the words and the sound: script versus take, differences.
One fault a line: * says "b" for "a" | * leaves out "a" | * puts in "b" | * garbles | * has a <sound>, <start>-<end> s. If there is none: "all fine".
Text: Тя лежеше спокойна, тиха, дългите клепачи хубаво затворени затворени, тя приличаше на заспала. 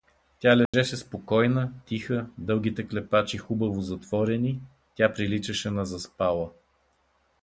* has a dropout, 0.7-0.7 s
* leaves out "затворени"